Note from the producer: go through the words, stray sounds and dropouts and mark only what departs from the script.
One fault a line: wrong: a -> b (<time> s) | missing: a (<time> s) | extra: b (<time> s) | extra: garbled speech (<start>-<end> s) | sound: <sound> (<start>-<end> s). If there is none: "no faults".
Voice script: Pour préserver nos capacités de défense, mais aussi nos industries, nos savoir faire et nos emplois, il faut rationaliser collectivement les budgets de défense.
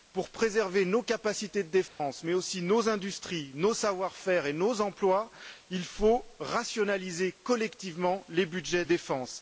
sound: dropout (1.9-2.0 s)
missing: de (8.8 s)